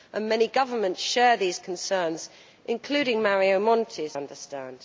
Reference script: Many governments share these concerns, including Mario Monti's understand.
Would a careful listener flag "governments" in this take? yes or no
no